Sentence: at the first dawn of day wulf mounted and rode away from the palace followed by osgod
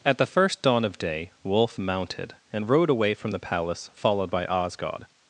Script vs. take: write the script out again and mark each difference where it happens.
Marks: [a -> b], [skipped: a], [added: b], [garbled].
at the first dawn of day wulf mounted and rode away from the palace followed by osgod